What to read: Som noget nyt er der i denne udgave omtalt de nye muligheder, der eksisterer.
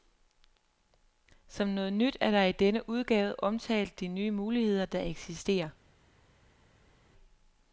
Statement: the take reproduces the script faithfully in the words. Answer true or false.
true